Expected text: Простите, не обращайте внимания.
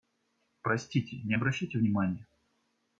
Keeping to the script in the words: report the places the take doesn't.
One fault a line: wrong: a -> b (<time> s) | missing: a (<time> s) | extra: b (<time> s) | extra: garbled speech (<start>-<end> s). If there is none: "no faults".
no faults